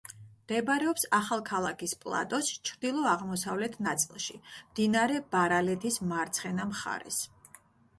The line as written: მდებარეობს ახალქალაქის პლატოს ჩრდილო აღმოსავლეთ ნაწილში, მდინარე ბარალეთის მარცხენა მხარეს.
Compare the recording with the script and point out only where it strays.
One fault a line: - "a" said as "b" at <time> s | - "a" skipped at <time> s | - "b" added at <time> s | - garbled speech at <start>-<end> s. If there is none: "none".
none